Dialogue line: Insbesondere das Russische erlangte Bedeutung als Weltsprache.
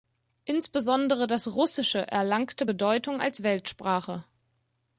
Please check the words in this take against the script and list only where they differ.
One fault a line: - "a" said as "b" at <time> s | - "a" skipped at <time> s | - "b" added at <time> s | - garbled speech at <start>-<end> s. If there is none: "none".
none